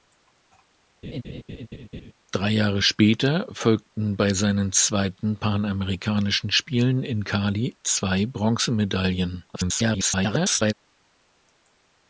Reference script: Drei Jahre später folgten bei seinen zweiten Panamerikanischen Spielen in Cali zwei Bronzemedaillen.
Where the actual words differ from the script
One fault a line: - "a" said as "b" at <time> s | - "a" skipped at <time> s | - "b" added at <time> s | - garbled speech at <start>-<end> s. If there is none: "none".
- garbled speech at 9.5-10.7 s